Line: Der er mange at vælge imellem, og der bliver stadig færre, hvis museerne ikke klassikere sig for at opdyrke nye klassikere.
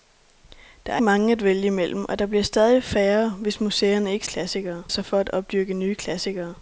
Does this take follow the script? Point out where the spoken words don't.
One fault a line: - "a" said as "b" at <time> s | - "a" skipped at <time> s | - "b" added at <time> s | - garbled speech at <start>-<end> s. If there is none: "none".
none